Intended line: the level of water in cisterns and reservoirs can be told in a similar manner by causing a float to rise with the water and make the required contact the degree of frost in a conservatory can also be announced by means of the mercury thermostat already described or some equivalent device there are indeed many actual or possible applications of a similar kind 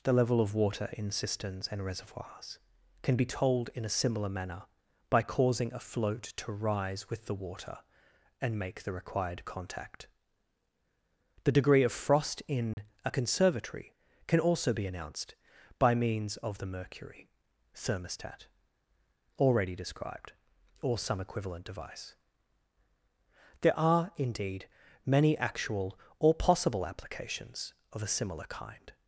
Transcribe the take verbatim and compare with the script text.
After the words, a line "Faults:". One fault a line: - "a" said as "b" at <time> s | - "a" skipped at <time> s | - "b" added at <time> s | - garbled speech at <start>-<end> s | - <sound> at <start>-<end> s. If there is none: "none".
the level of water in cisterns and reservoirs can be told in a similar manner by causing a float to rise with the water and make the required contact the degree of frost in a conservatory can also be announced by means of the mercury thermostat already described or some equivalent device there are indeed many actual or possible applications of a similar kind
Faults:
- dropout at 12.7-12.8 s